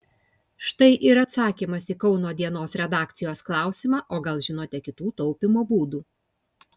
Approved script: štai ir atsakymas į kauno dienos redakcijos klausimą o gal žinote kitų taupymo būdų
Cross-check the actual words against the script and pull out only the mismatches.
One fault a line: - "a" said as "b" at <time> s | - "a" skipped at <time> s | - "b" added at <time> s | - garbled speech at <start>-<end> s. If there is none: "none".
none